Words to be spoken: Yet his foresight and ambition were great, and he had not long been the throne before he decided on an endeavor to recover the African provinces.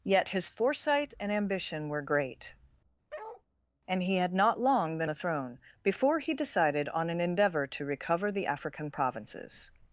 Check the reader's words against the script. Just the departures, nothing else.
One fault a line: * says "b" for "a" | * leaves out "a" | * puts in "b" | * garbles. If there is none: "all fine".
all fine